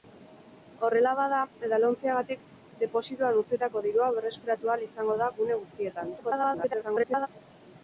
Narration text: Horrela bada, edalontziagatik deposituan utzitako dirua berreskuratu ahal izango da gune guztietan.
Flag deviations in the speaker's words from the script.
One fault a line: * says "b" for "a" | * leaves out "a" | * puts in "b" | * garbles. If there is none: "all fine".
* garbles